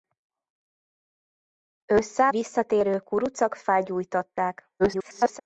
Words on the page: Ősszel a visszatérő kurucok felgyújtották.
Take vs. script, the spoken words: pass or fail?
fail